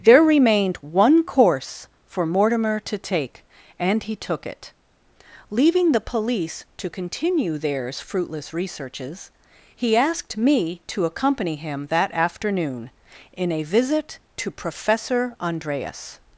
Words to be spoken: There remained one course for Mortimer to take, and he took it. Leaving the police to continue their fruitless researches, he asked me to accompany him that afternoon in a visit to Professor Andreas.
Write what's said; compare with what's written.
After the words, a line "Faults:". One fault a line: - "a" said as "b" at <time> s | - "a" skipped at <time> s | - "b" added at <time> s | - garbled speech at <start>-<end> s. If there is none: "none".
There remained one course for Mortimer to take, and he took it. Leaving the police to continue theirs fruitless researches, he asked me to accompany him that afternoon in a visit to Professor Andreas.
Faults:
- "their" said as "theirs" at 7.6 s